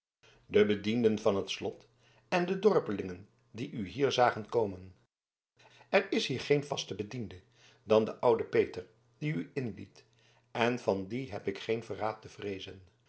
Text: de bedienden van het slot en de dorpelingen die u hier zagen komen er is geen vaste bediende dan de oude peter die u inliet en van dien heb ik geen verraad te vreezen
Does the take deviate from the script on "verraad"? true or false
false